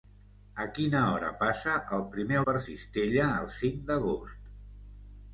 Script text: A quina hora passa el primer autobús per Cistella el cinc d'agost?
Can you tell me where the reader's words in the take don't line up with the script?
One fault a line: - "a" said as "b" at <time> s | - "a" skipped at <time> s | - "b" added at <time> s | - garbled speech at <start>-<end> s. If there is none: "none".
- "autobús" skipped at 2.4 s